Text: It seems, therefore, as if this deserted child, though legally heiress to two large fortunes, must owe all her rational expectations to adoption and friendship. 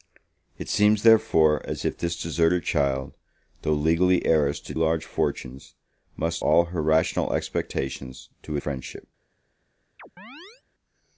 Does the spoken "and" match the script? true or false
false